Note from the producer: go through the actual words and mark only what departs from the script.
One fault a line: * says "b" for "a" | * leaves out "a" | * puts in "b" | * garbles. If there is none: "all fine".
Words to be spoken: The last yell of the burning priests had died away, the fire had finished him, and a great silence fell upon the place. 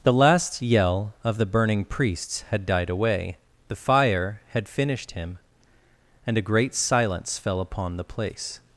all fine